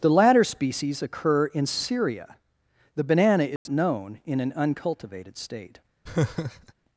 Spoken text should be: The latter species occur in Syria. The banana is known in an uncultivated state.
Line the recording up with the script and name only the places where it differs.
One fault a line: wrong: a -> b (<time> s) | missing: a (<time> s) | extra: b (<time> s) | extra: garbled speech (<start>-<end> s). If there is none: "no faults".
no faults